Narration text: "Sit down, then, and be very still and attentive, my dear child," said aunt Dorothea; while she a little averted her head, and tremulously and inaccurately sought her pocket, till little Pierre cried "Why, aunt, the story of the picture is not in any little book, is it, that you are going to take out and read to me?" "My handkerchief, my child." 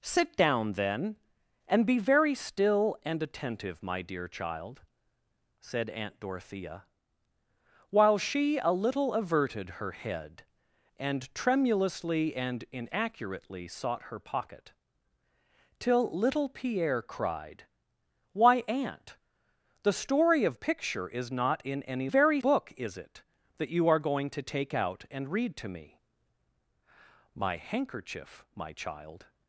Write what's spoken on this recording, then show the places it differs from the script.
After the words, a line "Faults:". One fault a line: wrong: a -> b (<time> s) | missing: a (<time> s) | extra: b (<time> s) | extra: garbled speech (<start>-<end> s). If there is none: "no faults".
"Sit down, then, and be very still and attentive, my dear child," said aunt Dorothea; while she a little averted her head, and tremulously and inaccurately sought her pocket, till little Pierre cried "Why, aunt, the story of picture is not in any very book, is it, that you are going to take out and read to me?" "My handkerchief, my child."
Faults:
missing: the (20.6 s)
wrong: little -> very (22.1 s)